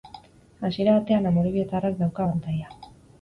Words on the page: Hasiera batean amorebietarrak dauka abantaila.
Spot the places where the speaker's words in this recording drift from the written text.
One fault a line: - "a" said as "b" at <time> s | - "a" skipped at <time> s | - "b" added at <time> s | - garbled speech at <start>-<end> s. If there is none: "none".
none